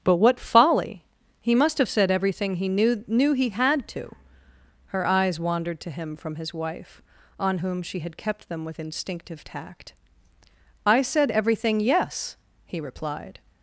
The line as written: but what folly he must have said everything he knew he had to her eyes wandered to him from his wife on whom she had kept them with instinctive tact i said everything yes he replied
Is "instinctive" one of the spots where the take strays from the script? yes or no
no